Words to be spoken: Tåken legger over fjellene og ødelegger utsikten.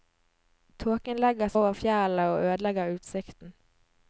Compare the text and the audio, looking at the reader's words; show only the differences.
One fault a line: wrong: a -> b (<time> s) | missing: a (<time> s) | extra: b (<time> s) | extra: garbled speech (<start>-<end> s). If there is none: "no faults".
no faults